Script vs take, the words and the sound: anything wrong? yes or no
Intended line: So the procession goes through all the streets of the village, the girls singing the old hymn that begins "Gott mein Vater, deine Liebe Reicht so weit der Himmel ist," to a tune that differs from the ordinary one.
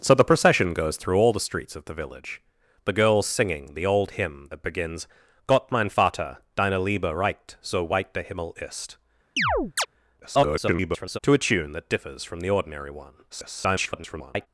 yes